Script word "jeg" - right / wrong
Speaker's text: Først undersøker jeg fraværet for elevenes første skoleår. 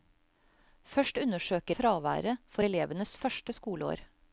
wrong